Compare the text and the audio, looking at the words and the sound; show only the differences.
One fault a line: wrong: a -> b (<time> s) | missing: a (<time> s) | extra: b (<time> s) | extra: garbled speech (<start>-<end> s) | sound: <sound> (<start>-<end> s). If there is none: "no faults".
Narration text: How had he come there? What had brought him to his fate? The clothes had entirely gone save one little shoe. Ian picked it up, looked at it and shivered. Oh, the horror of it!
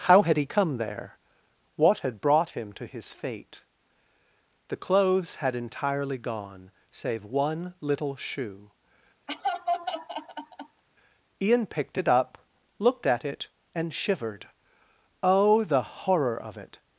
sound: laugh (9.3-10.8 s)